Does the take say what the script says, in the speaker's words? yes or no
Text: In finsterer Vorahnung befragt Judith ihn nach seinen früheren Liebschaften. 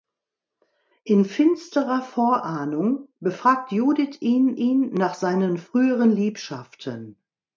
no